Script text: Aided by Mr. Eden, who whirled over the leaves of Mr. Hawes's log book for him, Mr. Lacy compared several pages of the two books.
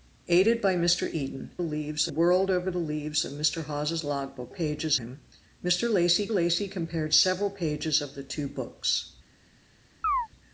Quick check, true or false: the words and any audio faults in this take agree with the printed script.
false